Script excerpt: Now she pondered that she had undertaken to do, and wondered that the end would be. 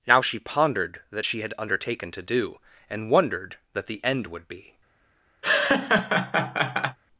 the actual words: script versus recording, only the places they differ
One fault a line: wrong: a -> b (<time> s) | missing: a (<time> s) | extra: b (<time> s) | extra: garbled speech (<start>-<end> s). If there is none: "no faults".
no faults